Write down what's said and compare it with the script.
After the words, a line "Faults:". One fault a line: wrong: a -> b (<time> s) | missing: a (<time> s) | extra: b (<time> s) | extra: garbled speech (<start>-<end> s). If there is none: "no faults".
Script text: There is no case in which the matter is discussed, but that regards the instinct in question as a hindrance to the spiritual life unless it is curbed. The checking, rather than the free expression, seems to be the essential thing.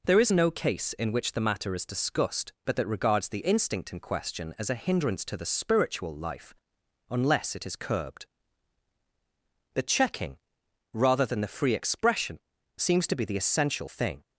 There is no case in which the matter is discussed, but that regards the instinct in question as a hindrance to the spiritual life unless it is curbed. The checking, rather than the free expression, seems to be the essential thing.
Faults:
no faults